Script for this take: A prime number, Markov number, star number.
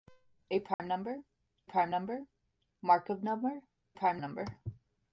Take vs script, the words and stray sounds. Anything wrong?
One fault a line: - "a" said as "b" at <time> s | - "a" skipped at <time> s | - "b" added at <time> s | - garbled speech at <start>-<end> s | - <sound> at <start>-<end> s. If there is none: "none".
- dropout at 0.7-0.8 s
- "prime number" added at 1.6 s
- "star" said as "prime" at 3.9 s